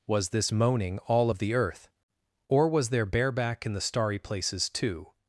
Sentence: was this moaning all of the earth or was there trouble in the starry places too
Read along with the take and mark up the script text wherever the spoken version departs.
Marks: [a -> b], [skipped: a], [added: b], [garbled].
was this moaning all of the earth or was there [trouble -> bareback] in the starry places too